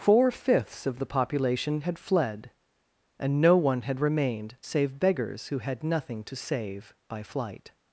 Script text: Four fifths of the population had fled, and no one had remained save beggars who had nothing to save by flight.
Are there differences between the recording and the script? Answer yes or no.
no